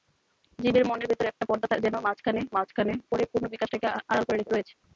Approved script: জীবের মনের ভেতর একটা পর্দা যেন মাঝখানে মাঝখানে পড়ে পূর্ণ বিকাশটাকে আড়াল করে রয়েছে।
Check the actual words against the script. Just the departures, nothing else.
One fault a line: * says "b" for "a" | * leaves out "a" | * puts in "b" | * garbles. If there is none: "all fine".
all fine